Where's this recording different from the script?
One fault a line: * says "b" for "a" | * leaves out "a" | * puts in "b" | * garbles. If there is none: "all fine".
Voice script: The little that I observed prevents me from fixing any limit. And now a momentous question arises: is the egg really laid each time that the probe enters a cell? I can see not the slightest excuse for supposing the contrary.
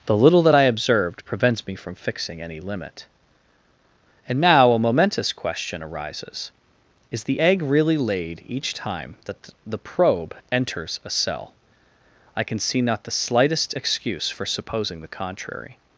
all fine